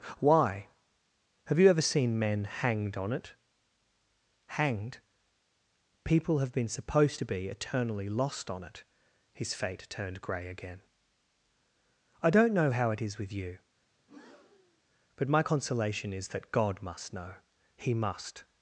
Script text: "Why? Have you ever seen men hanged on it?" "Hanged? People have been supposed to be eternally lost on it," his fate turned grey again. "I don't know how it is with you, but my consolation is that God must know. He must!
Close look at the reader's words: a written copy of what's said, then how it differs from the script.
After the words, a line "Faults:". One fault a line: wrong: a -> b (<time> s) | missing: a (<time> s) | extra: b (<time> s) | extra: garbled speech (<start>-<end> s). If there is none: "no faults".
"Why? Have you ever seen men hanged on it?" "Hanged? People have been supposed to be eternally lost on it," his fate turned grey again. "I don't know how it is with you, but my consolation is that God must know. He must!
Faults:
no faults